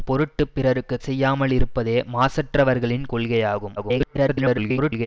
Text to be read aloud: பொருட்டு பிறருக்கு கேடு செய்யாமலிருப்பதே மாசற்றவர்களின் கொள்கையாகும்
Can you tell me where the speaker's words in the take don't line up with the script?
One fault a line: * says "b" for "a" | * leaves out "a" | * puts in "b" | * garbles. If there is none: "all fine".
* leaves out "கேடு"
* garbles